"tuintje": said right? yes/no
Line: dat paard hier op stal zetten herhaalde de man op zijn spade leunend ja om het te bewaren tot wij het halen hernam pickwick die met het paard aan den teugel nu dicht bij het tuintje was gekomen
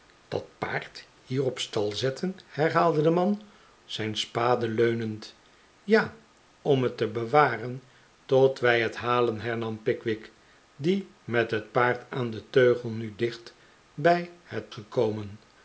no